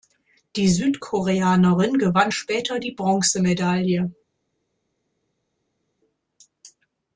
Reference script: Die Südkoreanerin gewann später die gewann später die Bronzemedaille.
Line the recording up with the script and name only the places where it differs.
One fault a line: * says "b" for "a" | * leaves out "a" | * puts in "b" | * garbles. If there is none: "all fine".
* leaves out "gewann später die"